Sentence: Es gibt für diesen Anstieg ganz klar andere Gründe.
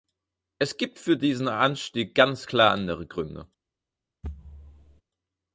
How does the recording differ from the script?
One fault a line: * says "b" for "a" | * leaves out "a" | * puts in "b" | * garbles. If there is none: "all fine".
all fine